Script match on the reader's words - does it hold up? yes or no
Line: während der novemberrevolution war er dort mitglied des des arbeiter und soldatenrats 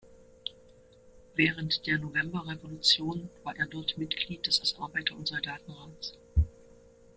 yes